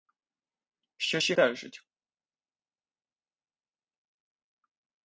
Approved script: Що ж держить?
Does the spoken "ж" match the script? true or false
true